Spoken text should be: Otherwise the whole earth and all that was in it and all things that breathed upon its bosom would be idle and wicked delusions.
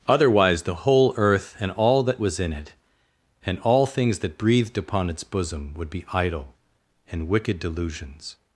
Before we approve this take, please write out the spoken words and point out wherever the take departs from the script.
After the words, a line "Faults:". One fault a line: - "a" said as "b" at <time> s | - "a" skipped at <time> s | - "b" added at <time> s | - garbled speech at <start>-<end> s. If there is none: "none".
Otherwise the whole earth and all that was in it and all things that breathed upon its bosom would be idle and wicked delusions.
Faults:
none